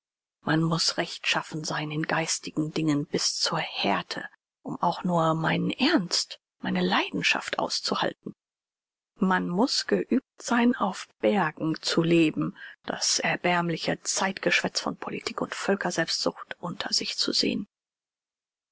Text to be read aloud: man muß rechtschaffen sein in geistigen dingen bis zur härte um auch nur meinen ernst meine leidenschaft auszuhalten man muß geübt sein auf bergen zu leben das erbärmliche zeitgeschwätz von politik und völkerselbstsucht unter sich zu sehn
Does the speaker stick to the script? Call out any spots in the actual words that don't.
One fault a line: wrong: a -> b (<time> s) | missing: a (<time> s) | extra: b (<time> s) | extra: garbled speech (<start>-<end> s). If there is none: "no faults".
no faults